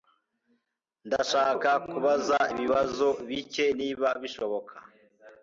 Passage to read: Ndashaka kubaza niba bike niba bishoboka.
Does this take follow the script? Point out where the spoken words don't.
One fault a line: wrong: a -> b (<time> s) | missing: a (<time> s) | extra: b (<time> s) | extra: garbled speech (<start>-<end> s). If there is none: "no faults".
wrong: niba -> ibibazo (2.5 s)